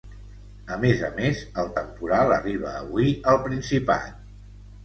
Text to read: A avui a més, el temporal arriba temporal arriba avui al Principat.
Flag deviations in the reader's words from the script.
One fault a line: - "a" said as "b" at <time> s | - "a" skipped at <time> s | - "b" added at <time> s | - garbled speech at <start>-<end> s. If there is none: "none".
- "avui" said as "més" at 0.8 s
- "temporal arriba" skipped at 2.8 s